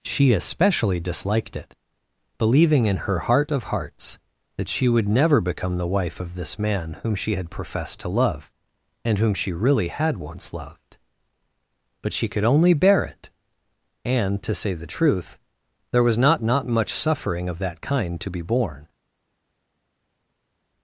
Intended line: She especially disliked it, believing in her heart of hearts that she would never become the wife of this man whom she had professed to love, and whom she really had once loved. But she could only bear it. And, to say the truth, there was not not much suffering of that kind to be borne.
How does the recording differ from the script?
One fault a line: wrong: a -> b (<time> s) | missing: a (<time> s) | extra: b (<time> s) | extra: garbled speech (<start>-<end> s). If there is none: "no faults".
no faults